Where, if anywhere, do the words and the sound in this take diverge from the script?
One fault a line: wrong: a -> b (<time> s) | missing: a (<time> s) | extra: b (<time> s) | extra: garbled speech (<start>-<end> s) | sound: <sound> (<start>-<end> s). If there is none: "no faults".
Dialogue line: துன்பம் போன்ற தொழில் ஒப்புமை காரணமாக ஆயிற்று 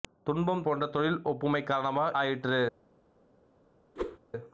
sound: whoosh (4.0-4.2 s)